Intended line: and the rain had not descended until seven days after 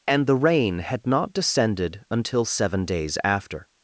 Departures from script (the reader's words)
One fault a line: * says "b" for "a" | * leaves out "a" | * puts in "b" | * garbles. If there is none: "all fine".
all fine